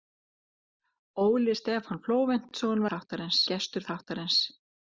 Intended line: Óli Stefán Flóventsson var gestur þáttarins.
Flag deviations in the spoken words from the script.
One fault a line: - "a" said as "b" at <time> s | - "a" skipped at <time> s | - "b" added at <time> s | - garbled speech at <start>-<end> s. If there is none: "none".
- "var" said as "þáttarins" at 2.9 s